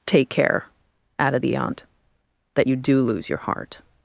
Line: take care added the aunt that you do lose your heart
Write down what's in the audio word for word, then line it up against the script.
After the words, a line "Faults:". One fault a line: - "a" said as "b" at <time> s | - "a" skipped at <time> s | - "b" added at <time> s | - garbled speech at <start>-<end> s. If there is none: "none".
take care added the aunt that you do lose your heart
Faults:
none